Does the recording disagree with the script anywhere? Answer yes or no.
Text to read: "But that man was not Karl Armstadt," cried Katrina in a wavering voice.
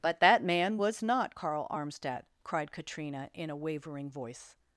no